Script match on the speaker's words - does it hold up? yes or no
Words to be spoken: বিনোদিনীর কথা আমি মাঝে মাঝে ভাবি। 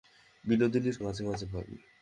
no